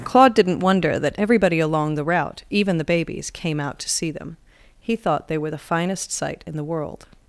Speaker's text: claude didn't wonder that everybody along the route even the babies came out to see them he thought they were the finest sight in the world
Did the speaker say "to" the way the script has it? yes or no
yes